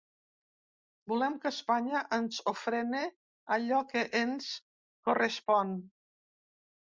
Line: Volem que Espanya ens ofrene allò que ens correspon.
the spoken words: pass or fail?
pass